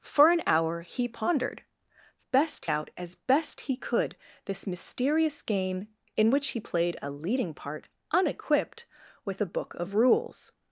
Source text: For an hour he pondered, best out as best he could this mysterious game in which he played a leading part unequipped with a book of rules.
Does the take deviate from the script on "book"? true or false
false